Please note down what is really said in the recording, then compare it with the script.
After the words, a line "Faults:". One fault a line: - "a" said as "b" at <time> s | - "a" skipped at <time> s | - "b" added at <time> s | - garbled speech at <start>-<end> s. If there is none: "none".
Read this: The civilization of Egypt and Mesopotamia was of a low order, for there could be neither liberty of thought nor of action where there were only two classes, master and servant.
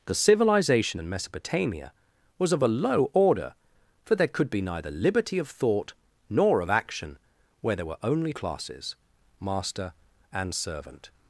The civilization and Mesopotamia was of a low order, for there could be neither liberty of thought nor of action where there were only classes, master and servant.
Faults:
- "of Egypt" skipped at 1.0 s
- "two" skipped at 8.3 s